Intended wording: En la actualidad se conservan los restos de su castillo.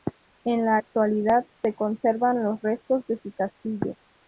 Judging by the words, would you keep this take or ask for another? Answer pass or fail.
pass